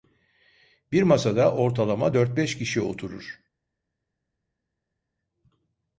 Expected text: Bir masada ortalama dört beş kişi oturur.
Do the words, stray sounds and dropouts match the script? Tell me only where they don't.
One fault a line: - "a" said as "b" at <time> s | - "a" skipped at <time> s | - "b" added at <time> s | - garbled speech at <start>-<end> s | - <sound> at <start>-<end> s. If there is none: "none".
none